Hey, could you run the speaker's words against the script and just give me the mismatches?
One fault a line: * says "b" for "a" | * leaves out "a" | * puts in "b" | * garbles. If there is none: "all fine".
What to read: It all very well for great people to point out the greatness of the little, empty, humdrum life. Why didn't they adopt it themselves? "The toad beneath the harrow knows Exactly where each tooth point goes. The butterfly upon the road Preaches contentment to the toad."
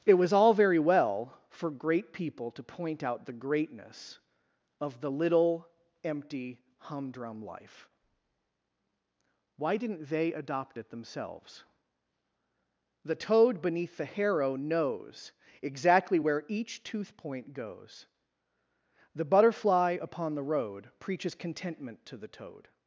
* puts in "was"